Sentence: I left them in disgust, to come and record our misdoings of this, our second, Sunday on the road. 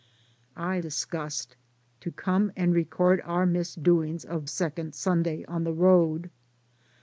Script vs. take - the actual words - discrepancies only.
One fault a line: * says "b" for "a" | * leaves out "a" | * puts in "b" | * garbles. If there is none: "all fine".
* leaves out "left them in"
* leaves out "this our"